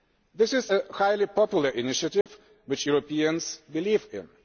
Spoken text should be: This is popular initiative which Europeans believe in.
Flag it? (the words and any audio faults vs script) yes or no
yes